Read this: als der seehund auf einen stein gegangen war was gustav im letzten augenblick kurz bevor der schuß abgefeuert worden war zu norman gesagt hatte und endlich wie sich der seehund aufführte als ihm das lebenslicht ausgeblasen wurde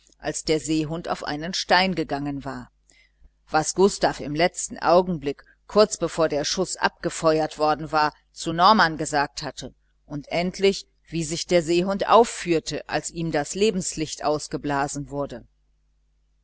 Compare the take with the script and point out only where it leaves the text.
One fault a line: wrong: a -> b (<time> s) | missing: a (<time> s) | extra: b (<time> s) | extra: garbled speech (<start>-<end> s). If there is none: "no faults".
no faults